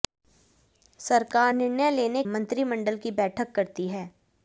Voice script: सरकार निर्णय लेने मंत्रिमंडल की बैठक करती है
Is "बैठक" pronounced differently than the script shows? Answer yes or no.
no